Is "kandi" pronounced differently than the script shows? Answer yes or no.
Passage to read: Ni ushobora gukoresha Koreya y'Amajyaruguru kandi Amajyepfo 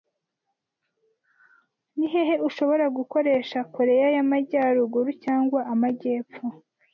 yes